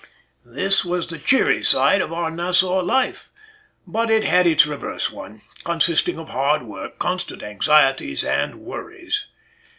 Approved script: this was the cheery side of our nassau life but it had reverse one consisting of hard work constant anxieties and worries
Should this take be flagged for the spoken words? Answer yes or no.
yes